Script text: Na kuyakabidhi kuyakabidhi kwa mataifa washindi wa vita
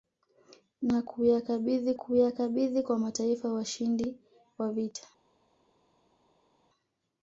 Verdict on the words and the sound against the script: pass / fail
pass